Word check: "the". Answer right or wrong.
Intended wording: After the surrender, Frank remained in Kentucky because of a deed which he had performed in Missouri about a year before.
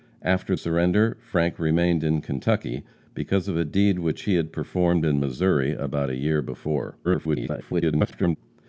wrong